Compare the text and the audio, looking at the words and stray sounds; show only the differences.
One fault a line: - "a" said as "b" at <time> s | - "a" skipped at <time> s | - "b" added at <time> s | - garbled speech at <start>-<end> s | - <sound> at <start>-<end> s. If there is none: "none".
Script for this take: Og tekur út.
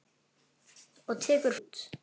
none